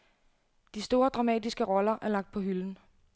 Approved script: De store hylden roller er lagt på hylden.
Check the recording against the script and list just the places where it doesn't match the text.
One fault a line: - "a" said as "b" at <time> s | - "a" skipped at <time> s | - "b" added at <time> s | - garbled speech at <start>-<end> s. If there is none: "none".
- "hylden" said as "dramatiske" at 1.1 s